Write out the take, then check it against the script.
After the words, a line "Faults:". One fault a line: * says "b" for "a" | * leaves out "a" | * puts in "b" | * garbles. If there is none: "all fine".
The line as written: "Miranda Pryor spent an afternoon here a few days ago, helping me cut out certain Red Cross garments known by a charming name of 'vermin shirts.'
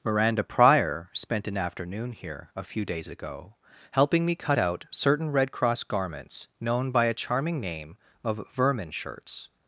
"Miranda Pryor spent an afternoon here a few days ago, helping me cut out certain Red Cross garments known by a charming name of 'vermin shirts.'
Faults:
all fine